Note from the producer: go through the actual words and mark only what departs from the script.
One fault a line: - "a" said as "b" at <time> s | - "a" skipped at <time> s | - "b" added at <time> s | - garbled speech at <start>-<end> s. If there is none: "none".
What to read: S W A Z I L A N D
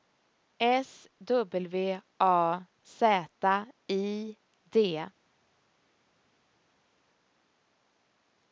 - "L A N" skipped at 4.4 s